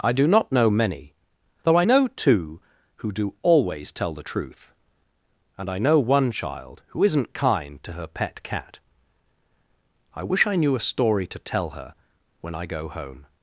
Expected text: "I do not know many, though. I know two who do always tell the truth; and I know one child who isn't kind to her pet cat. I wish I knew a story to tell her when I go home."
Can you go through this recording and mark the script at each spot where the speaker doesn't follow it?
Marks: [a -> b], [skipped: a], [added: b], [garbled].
"I do not know many, though. I know two who do always tell the truth; and I know one child who isn't kind to her pet cat. I wish I knew a story to tell her when I go home."